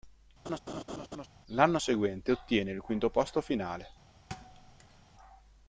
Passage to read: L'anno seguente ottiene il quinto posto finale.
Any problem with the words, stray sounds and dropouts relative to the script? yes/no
yes